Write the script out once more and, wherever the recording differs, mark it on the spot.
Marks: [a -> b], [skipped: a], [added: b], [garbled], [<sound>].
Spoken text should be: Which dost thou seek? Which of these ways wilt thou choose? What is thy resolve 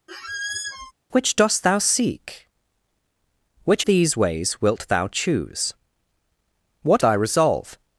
[squeak] Which dost thou seek? Which [skipped: of] these ways wilt thou choose? What [skipped: is] thy resolve